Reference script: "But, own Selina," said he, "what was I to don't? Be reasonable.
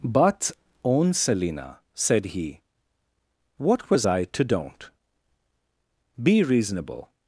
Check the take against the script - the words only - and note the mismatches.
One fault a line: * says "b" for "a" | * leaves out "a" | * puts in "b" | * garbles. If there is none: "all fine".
all fine